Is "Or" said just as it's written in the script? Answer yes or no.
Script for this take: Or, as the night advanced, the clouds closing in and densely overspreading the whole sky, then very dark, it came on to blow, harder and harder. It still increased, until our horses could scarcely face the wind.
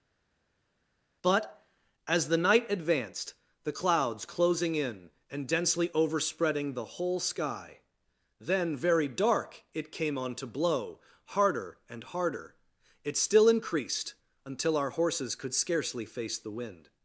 no